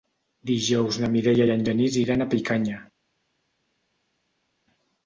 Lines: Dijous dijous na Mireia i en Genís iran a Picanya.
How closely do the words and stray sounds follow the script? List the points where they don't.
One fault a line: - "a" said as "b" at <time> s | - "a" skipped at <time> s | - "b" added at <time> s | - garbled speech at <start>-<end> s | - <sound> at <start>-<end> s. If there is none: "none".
- "dijous" skipped at 1.0 s